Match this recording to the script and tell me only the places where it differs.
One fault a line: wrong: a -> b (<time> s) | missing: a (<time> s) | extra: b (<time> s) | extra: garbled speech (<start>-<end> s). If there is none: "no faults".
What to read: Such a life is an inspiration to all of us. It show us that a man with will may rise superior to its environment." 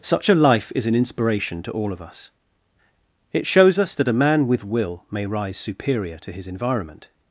wrong: show -> shows (3.5 s)
wrong: its -> his (6.3 s)